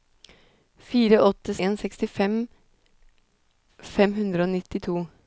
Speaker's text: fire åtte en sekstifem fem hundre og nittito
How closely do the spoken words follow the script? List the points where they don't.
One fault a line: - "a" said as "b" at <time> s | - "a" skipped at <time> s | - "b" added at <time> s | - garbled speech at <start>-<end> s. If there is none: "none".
none